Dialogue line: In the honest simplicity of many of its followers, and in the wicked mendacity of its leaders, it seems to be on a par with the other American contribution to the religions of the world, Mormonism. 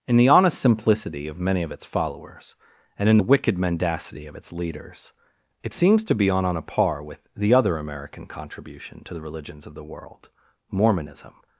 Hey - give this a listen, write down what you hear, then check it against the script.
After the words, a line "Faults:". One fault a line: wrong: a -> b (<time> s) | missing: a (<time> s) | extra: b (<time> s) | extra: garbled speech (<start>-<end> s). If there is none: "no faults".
In the honest simplicity of many of its followers, and in the wicked mendacity of its leaders, it seems to be on on a par with the other American contribution to the religions of the world, Mormonism.
Faults:
extra: on (6.4 s)